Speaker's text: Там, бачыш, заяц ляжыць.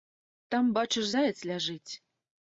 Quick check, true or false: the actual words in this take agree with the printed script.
true